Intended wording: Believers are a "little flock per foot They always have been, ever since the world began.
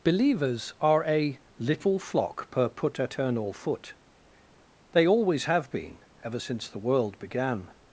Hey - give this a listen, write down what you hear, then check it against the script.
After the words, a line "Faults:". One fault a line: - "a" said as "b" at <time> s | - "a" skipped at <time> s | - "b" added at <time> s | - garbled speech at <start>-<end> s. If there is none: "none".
Believers are a "little flock per put eternal foot They always have been, ever since the world began.
Faults:
- "put eternal" added at 2.7 s